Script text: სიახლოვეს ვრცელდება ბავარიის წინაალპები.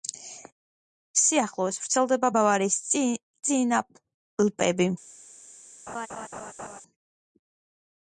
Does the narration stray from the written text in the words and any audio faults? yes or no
yes